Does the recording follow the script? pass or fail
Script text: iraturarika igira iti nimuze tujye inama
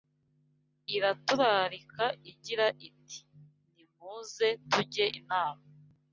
pass